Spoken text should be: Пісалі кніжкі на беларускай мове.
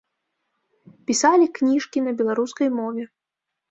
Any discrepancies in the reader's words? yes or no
no